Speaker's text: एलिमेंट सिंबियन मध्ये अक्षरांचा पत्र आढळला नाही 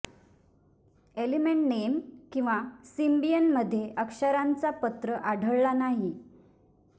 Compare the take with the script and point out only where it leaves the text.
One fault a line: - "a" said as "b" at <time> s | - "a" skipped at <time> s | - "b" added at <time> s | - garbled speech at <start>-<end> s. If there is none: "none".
- "नेम किंवा" added at 1.7 s